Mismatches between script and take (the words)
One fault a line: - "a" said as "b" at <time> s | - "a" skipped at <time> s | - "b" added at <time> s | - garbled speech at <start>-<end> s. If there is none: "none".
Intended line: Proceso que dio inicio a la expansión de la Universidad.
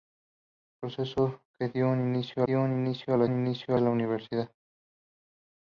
- "dio inicio" added at 2.4 s
- "expansión" said as "inicio" at 3.2 s